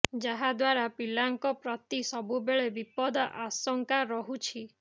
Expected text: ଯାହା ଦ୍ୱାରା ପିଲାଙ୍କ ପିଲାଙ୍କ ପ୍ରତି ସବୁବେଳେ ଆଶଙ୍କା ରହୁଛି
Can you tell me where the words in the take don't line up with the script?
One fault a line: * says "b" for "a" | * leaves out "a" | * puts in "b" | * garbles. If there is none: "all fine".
* leaves out "ପିଲାଙ୍କ"
* puts in "ବିପଦ"